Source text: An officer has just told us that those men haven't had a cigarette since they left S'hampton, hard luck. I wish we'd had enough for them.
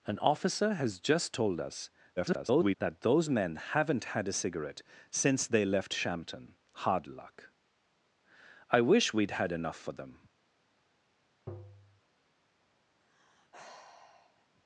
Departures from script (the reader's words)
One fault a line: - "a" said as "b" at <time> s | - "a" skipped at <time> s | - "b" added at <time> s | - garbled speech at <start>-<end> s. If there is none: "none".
- garbled speech at 2.2-2.8 s